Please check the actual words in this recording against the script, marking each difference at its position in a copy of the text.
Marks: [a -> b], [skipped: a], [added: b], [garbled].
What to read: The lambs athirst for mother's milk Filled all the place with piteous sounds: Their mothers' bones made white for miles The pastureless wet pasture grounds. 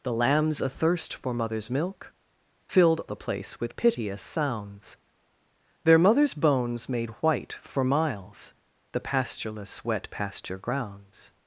The lambs athirst for mother's milk Filled [skipped: all] the place with piteous sounds: Their mothers' bones made white for miles The pastureless wet pasture grounds.